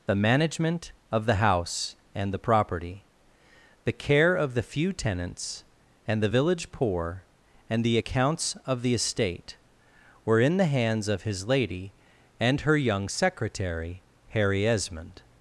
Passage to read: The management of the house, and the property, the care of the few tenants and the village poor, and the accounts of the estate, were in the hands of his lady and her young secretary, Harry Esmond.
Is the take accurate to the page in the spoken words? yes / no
yes